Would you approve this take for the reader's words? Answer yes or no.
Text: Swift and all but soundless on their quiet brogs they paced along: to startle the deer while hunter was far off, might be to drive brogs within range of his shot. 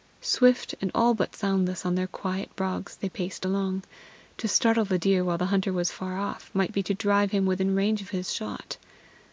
no